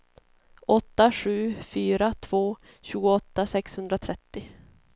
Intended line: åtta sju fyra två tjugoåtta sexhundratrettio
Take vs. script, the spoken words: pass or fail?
pass